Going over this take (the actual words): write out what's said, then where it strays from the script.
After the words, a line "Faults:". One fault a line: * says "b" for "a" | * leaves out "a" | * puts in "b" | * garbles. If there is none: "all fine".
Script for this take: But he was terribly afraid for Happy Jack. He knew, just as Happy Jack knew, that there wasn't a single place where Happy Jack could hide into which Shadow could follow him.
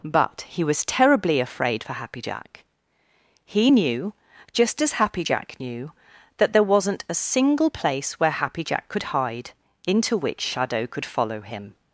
But he was terribly afraid for Happy Jack. He knew, just as Happy Jack knew, that there wasn't a single place where Happy Jack could hide into which Shadow could follow him.
Faults:
all fine